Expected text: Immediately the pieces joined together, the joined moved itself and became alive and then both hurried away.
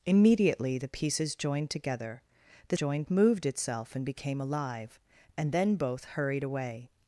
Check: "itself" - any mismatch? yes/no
no